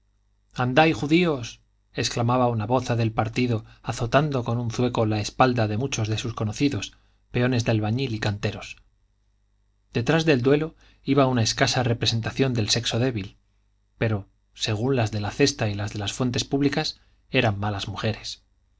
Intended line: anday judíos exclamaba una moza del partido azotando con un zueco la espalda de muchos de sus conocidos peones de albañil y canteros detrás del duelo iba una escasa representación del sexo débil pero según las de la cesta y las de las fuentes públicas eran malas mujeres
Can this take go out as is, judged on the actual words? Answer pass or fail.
pass